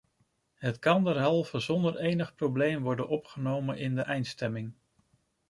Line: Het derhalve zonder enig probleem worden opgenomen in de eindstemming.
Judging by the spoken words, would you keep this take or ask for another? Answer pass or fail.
fail